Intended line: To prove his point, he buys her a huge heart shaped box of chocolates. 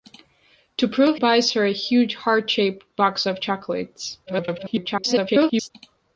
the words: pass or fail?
fail